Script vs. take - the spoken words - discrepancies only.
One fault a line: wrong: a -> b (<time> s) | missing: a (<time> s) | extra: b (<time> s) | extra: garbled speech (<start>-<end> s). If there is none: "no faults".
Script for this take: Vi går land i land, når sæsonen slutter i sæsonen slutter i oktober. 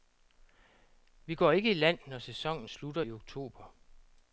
wrong: land -> ikke (1.5 s)
missing: sæsonen slutter i (3.1 s)